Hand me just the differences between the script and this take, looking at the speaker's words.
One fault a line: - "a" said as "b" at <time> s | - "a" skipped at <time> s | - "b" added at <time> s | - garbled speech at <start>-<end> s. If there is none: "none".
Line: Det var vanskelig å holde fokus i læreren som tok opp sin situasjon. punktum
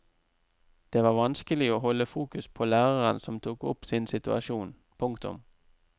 - "i" said as "på" at 2.5 s